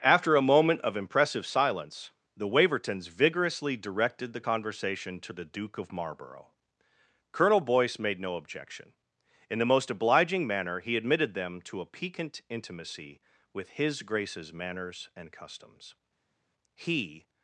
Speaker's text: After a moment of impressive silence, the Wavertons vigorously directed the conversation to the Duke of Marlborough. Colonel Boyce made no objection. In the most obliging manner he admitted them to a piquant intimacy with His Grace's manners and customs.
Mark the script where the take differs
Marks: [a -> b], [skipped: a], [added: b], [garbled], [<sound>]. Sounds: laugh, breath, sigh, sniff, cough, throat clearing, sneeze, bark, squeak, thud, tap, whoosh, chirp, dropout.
After a moment of impressive silence, the Wavertons vigorously directed the conversation to the Duke of Marlborough. Colonel Boyce made no objection. In the most obliging manner he admitted them to a piquant intimacy with His Grace's manners and customs. [added: He]